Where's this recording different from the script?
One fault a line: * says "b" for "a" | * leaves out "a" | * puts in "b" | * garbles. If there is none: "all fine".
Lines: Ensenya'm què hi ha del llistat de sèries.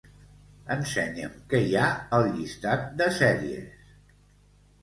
* says "al" for "del"